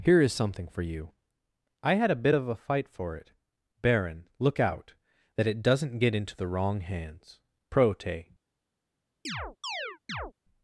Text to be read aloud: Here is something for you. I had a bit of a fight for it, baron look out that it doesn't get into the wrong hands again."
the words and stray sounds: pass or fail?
fail